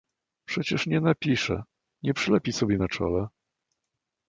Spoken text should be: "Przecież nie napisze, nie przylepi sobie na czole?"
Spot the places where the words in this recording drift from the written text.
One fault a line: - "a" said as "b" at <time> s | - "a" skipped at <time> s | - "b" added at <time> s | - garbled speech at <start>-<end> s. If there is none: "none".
none